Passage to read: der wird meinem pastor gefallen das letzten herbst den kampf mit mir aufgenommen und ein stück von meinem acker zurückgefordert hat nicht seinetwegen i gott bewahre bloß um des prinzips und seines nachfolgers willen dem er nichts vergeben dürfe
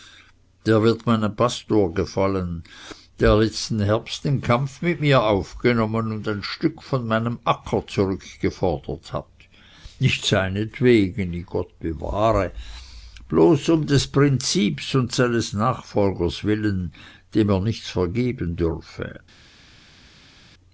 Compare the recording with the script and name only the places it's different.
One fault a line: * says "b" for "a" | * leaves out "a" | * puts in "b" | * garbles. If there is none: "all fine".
* says "der" for "das"